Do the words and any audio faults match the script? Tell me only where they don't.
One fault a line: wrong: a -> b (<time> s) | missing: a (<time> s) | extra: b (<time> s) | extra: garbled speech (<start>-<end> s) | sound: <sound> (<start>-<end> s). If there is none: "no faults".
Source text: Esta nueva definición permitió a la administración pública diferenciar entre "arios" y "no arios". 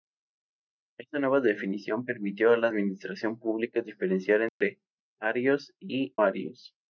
sound: dropout (4.5-4.6 s)
missing: no (6.1 s)